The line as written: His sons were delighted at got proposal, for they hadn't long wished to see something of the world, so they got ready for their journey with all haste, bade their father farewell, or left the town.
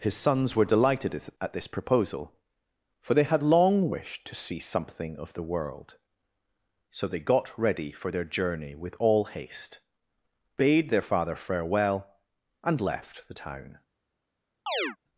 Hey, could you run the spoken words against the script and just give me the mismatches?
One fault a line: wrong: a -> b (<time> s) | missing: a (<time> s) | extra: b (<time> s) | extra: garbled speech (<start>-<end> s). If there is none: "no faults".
wrong: got -> this (1.5 s)
wrong: hadn't -> had (3.2 s)
wrong: or -> and (12.6 s)